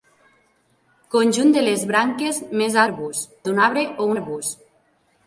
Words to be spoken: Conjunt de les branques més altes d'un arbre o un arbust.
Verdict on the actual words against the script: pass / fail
fail